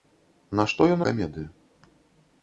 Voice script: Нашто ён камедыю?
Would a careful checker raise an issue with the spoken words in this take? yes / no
no